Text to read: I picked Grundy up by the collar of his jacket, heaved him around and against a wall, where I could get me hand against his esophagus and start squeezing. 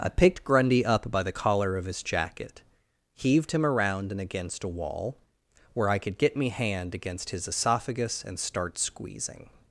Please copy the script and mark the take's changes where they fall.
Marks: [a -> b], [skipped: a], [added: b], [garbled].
I picked Grundy up by the collar of his jacket, heaved him around and against a wall, where I could get me hand against his esophagus and start squeezing.